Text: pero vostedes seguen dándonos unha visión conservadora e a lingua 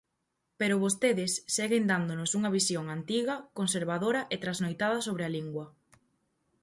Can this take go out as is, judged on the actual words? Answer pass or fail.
fail